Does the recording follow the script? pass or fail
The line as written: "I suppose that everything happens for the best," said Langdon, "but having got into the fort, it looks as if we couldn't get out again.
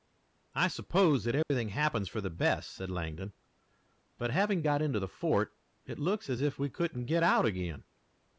pass